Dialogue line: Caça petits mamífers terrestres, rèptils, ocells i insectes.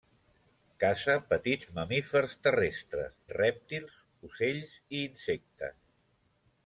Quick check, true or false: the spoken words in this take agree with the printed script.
true